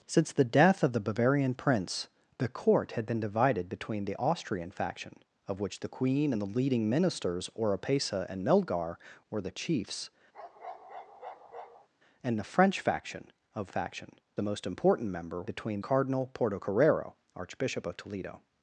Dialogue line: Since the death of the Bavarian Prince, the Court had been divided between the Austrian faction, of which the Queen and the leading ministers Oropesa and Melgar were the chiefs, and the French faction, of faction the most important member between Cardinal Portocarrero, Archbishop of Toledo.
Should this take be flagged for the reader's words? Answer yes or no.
no